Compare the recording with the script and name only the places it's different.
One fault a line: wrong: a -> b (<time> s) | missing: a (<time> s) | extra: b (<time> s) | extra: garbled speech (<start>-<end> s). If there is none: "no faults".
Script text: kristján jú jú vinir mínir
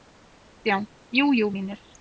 missing: vinir (1.5 s)